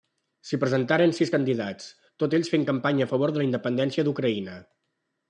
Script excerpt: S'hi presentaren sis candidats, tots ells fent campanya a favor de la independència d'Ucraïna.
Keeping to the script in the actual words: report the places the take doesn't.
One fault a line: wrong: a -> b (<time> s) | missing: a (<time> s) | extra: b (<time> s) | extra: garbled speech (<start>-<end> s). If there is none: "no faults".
no faults